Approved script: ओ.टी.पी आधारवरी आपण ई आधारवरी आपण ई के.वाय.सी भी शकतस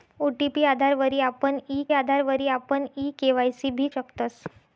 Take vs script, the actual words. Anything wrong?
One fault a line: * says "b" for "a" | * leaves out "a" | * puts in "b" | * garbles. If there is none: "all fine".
all fine